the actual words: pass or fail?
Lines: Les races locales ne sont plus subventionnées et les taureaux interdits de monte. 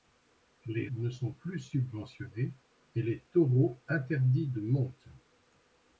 fail